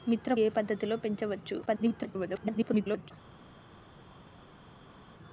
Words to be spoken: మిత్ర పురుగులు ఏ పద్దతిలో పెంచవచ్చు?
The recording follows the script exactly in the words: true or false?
false